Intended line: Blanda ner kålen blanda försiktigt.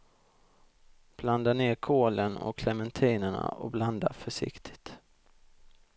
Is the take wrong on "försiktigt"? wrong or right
right